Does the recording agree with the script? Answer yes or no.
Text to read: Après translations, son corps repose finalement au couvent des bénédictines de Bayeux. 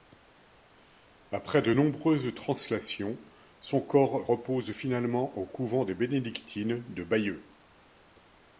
no